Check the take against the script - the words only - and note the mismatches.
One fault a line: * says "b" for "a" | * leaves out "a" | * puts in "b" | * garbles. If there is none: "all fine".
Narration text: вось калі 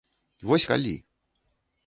all fine